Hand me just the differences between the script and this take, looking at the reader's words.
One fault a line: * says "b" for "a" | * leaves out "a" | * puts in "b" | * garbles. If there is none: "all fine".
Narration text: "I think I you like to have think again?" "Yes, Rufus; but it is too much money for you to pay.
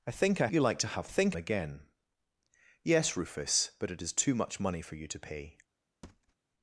all fine